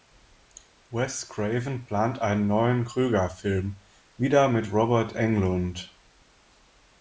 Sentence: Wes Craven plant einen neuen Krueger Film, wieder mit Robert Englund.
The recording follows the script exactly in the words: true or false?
true